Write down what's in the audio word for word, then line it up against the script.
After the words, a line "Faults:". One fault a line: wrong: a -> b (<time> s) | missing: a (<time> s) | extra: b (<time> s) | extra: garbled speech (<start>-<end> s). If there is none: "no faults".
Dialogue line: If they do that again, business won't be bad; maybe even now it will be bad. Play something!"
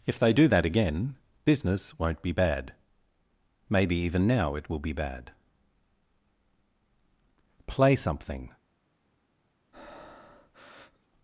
If they do that again, business won't be bad; maybe even now it will be bad. Play something!"
Faults:
no faults